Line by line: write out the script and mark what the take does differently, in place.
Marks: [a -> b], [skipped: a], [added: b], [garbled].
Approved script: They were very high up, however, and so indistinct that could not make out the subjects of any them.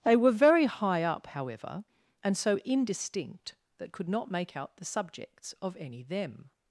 They were very high up, however, and so indistinct that could not make out the subjects of any them.